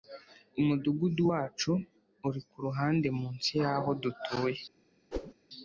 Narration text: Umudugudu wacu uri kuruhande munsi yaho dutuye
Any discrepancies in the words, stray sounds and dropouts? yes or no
yes